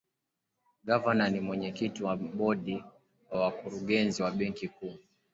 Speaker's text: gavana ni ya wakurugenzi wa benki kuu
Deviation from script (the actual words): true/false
true